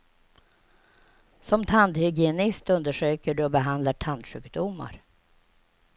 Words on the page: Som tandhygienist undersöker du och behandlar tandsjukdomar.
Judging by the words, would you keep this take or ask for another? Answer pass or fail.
pass